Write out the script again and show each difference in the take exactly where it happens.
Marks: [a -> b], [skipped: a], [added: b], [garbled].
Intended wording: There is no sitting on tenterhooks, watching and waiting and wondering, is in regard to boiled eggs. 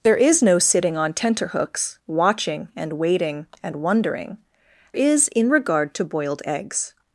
There is no sitting on tenterhooks, watching and waiting and wondering, is in regard to boiled eggs.